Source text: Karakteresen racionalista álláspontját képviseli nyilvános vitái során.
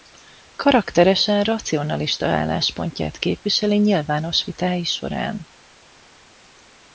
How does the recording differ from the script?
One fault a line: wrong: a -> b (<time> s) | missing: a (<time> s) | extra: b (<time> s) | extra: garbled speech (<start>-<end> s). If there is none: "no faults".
no faults